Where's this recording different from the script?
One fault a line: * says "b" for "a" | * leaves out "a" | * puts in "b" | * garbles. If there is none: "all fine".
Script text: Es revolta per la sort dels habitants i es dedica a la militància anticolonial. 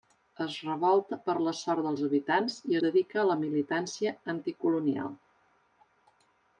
* leaves out "es"